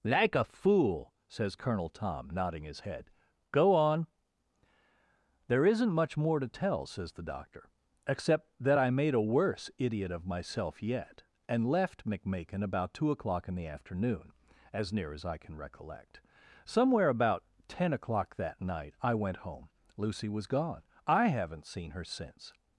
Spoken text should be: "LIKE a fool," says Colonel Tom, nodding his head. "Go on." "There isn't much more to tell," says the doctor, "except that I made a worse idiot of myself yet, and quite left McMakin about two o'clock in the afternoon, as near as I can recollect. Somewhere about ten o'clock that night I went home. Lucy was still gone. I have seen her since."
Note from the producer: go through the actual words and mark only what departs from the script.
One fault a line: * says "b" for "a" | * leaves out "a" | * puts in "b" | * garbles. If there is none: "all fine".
* leaves out "quite"
* leaves out "still"
* says "haven't" for "have"